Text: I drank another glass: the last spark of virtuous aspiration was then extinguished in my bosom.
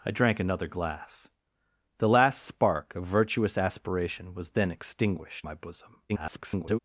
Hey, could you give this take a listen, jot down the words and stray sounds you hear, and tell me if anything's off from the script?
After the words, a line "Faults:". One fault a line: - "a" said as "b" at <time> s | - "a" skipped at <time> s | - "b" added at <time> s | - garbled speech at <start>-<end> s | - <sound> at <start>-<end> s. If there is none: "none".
I drank another glass: the last spark of virtuous aspiration was then extinguished my bosom. [garbled]
Faults:
- "in" skipped at 5.5 s
- garbled speech at 6.1-6.8 s